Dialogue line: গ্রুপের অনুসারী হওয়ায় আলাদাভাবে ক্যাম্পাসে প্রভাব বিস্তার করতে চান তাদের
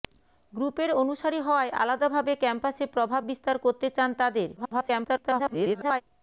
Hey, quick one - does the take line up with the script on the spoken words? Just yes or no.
no